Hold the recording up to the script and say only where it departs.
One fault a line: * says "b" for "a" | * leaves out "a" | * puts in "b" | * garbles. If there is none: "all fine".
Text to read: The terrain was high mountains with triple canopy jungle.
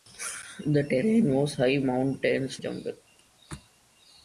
* leaves out "with triple canopy"